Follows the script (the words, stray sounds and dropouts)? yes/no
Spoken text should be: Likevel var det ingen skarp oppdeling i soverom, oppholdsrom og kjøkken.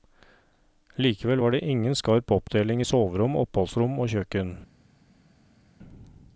yes